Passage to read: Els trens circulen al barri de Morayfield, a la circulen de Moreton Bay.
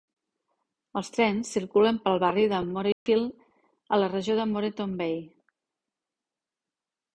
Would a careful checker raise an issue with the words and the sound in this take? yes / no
yes